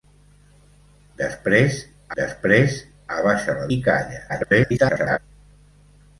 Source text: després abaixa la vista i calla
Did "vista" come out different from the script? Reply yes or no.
yes